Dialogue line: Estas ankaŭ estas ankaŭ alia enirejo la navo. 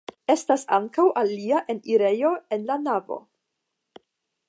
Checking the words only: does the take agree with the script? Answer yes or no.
no